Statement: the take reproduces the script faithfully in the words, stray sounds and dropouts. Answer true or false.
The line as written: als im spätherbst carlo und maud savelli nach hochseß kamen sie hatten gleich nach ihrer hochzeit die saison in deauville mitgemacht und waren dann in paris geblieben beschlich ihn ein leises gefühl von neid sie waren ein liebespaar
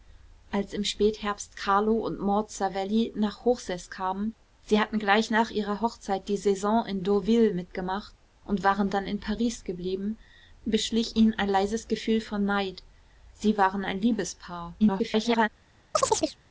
false